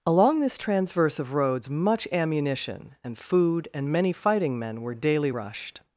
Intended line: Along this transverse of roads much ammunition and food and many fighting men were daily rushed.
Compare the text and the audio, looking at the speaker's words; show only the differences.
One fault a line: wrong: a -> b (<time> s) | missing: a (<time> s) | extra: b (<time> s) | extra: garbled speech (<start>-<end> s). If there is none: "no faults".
no faults